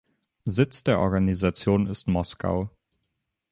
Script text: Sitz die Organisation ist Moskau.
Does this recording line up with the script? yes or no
no